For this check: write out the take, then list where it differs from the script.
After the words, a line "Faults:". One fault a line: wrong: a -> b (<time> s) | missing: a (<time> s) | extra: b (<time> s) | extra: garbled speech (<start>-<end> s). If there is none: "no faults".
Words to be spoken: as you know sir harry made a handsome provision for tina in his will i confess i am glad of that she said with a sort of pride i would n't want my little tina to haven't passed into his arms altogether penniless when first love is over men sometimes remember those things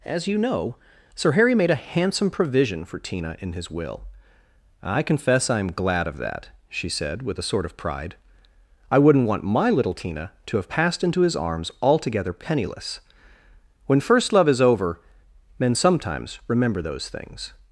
as you know sir harry made a handsome provision for tina in his will i confess i am glad of that she said with a sort of pride i would n't want my little tina to have passed into his arms altogether penniless when first love is over men sometimes remember those things
Faults:
wrong: haven't -> have (10.6 s)